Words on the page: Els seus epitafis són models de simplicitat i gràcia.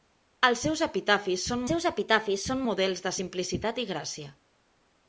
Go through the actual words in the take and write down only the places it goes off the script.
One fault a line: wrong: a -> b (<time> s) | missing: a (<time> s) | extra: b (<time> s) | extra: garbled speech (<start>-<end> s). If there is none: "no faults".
extra: seus epitafis són (1.7 s)